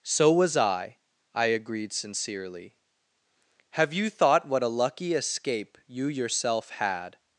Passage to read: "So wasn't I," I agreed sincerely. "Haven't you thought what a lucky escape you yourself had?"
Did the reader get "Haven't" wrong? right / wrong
wrong